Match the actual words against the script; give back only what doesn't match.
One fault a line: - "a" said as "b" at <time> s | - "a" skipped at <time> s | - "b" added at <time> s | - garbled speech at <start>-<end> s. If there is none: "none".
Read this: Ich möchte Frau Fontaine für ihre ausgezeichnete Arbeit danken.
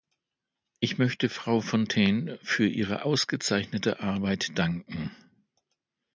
none